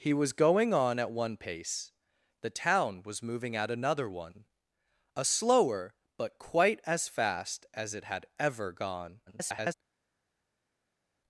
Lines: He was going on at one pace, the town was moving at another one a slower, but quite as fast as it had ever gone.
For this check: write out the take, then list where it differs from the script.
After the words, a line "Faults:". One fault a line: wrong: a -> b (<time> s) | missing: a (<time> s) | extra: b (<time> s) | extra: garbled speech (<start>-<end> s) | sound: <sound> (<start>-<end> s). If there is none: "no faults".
He was going on at one pace, the town was moving at another one a slower, but quite as fast as it had ever gone. [garbled]
Faults:
extra: garbled speech (9.3-9.7 s)